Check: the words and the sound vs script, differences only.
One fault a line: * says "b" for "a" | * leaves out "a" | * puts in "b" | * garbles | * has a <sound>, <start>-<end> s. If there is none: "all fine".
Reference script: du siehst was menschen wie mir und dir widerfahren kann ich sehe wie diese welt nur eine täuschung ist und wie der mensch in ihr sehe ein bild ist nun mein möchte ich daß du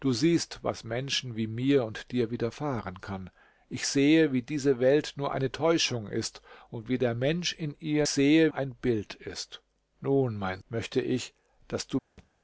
* has a thud, 12.2-12.3 s